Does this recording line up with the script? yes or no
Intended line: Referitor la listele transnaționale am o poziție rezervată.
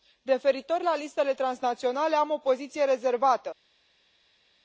yes